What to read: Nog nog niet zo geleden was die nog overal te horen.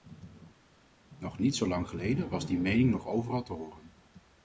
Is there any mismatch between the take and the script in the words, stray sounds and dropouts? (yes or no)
yes